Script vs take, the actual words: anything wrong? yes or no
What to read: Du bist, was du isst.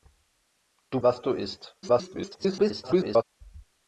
yes